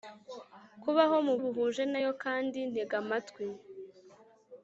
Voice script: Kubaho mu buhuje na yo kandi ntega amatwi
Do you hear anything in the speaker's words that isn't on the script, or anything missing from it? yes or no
no